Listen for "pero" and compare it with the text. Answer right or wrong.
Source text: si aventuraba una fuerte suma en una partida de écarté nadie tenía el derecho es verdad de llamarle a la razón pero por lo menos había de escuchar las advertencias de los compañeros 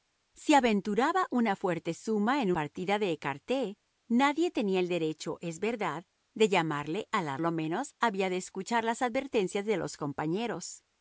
wrong